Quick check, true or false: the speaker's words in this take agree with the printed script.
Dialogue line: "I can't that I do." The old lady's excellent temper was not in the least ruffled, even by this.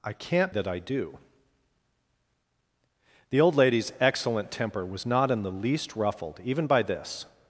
true